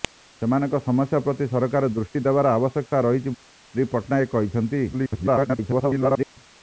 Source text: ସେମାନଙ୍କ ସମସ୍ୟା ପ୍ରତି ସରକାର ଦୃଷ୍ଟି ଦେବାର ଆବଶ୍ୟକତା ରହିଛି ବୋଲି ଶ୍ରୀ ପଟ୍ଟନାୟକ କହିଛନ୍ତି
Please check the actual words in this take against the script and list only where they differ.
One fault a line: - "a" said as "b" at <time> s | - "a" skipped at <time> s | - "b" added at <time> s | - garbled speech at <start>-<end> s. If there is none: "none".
- "ବୋଲି" skipped at 3.4 s
- garbled speech at 4.9-6.4 s